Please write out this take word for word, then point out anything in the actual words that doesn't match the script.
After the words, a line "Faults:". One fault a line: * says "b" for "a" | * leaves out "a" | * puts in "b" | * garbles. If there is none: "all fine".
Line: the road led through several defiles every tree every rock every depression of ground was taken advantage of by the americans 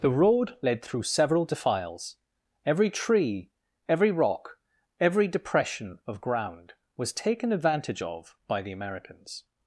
the road led through several defiles every tree every rock every depression of ground was taken advantage of by the americans
Faults:
all fine